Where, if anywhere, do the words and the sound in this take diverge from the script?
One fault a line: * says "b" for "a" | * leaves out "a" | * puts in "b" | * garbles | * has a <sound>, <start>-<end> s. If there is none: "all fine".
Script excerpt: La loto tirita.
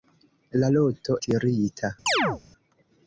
* has a chirp, 2.1-2.4 s